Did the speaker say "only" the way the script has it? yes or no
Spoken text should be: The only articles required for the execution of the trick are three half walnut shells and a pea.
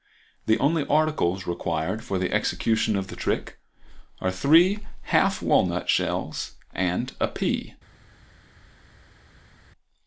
yes